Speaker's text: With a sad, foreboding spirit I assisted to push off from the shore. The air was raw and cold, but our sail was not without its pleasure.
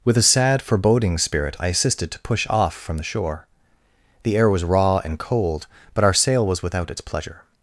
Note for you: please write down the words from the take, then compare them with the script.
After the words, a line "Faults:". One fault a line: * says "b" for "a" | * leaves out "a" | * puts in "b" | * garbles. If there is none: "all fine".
With a sad, foreboding spirit I assisted to push off from the shore. The air was raw and cold, but our sail was without its pleasure.
Faults:
* leaves out "not"